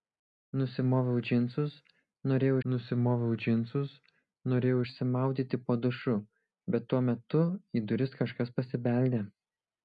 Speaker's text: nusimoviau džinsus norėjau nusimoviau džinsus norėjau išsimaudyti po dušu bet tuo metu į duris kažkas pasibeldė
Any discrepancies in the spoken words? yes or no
no